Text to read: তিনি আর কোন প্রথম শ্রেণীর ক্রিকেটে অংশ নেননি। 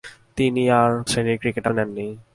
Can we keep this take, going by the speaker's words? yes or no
no